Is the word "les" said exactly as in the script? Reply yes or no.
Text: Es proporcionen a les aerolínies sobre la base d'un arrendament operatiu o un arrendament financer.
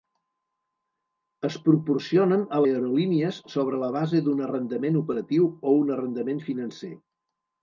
no